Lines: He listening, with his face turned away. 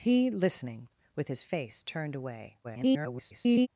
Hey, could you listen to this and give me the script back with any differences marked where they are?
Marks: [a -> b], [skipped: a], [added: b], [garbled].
He listening, with his face turned away. [garbled]